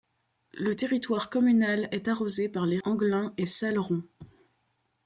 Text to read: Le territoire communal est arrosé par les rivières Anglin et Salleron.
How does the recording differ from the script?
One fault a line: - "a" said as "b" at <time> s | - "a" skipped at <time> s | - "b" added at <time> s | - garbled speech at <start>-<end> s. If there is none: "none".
- "rivières" skipped at 2.8 s